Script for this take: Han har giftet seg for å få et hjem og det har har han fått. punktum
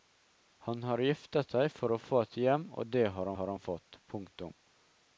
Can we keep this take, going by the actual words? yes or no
yes